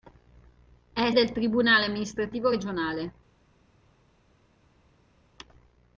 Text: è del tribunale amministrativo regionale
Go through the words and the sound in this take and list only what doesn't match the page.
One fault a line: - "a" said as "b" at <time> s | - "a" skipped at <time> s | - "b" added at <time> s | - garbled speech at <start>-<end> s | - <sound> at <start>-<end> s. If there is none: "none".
none